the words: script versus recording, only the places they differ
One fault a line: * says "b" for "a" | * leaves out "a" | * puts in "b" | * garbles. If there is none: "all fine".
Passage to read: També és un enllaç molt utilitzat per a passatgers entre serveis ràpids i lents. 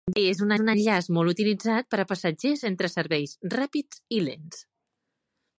* puts in "un"